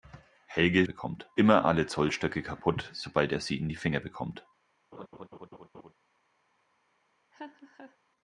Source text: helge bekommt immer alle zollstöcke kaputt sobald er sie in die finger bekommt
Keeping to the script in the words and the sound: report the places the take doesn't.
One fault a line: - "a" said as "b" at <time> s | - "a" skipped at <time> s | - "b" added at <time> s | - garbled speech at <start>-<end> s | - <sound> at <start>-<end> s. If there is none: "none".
- laugh at 4.9-5.9 s
- laugh at 7.3-8.0 s